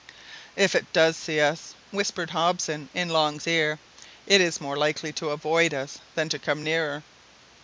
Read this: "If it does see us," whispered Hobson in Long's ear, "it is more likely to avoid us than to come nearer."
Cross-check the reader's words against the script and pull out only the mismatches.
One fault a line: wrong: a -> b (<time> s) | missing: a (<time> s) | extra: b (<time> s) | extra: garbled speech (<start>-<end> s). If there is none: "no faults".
no faults